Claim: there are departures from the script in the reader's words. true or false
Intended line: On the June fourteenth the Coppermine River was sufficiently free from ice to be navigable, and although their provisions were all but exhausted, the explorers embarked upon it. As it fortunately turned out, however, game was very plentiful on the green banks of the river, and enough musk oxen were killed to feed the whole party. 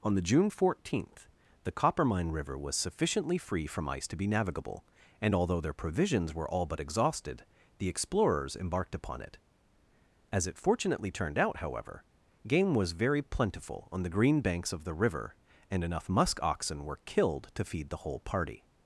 false